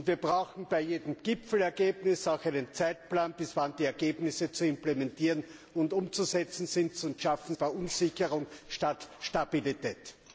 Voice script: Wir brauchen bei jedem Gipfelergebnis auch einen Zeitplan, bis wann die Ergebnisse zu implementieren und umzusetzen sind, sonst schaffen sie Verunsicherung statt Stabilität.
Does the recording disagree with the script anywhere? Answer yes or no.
yes